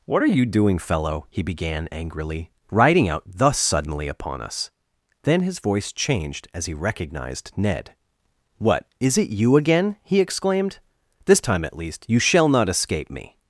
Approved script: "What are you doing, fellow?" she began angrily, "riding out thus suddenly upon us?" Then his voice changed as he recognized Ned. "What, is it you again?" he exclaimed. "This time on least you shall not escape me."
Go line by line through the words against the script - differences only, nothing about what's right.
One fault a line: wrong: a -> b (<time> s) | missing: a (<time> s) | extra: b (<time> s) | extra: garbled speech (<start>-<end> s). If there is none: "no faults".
wrong: she -> he (1.3 s)
wrong: on -> at (11.6 s)